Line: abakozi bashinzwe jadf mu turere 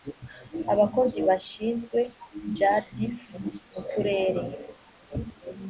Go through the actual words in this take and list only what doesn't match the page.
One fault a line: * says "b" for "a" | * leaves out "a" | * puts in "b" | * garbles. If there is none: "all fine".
all fine